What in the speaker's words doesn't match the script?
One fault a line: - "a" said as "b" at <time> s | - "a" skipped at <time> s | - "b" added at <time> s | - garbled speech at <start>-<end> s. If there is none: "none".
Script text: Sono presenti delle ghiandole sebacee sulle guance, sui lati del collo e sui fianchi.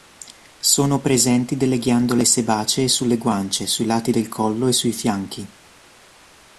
none